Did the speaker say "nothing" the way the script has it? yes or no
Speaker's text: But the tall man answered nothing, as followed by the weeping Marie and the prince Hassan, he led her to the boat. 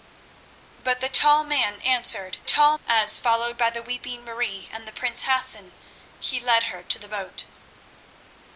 no